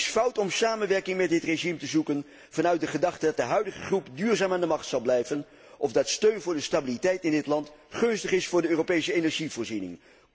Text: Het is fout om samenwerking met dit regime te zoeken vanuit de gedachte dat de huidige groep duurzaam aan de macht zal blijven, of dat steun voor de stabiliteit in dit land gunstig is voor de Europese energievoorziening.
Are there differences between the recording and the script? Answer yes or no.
no